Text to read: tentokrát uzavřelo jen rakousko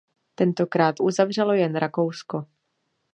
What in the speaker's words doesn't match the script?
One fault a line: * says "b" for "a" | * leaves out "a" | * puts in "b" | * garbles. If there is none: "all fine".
all fine